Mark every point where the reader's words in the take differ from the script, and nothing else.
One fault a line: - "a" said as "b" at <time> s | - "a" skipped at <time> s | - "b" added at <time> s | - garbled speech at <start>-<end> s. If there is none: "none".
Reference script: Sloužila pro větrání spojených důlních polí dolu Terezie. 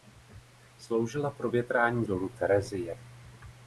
- "spojených důlních polí" skipped at 2.1 s